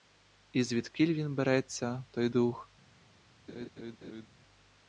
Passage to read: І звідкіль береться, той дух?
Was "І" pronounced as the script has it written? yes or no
yes